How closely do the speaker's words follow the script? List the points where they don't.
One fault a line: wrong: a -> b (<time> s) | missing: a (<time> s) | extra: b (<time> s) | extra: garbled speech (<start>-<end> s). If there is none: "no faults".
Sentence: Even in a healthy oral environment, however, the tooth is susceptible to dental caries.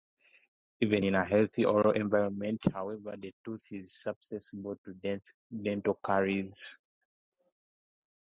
no faults